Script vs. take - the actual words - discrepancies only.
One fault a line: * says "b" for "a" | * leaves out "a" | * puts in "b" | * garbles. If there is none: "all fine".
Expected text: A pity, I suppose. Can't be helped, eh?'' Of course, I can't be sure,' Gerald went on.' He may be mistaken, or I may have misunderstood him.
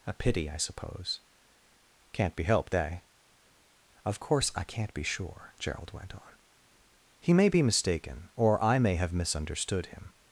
all fine